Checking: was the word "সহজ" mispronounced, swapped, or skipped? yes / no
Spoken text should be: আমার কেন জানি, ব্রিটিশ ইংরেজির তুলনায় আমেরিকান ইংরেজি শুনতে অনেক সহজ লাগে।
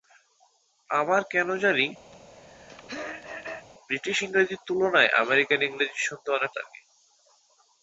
yes